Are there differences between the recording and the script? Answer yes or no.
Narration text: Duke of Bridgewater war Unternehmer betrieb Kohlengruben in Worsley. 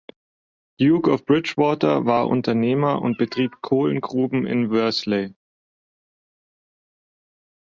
yes